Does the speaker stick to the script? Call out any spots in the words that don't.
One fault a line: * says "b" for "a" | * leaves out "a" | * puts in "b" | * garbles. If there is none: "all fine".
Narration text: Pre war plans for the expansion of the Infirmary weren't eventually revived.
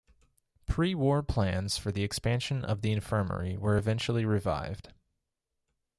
* says "were" for "weren't"